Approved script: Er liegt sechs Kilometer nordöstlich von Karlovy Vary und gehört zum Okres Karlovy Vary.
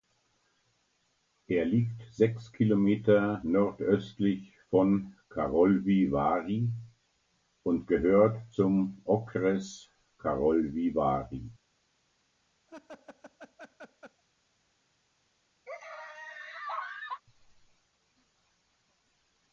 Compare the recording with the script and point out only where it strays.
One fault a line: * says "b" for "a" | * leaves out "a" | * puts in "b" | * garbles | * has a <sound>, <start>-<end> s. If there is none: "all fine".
* has a laugh, 12.7-14.2 s
* has a laugh, 15.7-17.2 s